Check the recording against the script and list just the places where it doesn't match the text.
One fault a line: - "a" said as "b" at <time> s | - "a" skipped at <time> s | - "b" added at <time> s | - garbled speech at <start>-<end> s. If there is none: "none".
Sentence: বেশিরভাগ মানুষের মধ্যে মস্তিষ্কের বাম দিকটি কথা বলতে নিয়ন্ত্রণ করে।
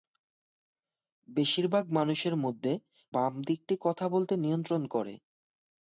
- "মস্তিষ্কের" skipped at 2.7 s